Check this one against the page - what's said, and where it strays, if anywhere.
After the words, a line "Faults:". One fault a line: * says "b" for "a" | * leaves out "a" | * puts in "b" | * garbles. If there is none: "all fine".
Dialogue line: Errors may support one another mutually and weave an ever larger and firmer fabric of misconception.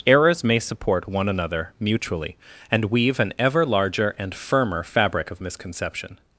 Errors may support one another mutually and weave an ever larger and firmer fabric of misconception.
Faults:
all fine